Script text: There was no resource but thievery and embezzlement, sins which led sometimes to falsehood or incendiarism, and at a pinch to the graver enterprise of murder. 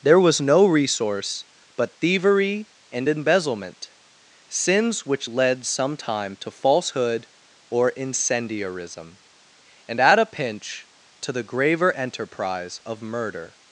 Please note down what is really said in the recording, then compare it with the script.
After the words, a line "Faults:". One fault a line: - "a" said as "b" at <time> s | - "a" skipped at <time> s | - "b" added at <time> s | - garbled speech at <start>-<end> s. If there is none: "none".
There was no resource but thievery and embezzlement, sins which led sometime to falsehood or incendiarism, and at a pinch to the graver enterprise of murder.
Faults:
- "sometimes" said as "sometime" at 5.7 s